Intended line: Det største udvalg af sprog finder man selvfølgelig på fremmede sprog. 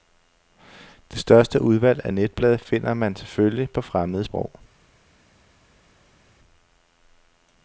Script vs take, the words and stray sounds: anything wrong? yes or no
yes